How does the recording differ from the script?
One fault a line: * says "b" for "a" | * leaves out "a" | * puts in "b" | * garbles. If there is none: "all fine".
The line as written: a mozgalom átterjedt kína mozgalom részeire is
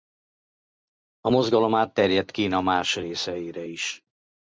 * says "más" for "mozgalom"